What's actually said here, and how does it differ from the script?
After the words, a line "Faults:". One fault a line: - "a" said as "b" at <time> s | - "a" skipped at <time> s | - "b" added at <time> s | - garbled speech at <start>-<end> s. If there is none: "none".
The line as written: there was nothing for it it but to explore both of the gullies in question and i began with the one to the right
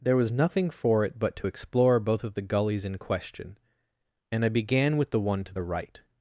there was nothing for it but to explore both of the gullies in question and i began with the one to the right
Faults:
- "it" skipped at 1.2 s